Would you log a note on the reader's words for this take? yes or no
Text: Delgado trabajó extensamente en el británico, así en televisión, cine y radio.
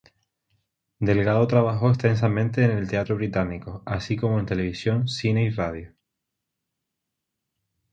yes